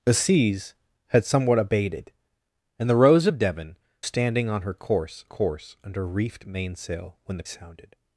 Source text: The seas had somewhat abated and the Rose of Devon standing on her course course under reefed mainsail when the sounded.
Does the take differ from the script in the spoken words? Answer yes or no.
no